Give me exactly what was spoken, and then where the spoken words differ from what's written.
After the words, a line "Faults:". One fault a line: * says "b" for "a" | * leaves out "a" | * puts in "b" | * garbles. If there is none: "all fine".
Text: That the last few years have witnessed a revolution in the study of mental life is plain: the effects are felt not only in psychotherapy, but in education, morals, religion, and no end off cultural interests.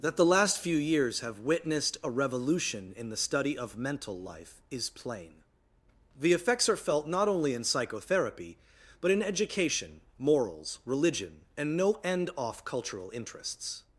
That the last few years have witnessed a revolution in the study of mental life is plain: the effects are felt not only in psychotherapy, but in education, morals, religion, and no end off cultural interests.
Faults:
all fine